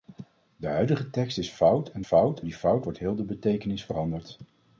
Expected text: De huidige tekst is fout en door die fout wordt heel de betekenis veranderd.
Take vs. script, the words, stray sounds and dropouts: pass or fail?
fail